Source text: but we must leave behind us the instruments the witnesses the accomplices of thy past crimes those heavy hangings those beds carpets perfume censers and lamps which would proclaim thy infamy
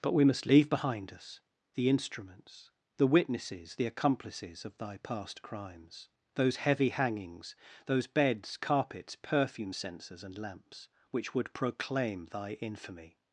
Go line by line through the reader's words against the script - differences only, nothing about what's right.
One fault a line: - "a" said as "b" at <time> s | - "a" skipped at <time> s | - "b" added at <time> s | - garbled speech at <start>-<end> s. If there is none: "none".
none